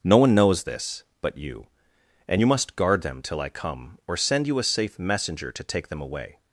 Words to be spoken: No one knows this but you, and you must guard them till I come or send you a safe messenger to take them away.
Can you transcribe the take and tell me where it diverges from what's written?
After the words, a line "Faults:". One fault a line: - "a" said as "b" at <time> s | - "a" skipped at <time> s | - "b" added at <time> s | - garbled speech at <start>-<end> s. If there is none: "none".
No one knows this but you, and you must guard them till I come or send you a safe messenger to take them away.
Faults:
none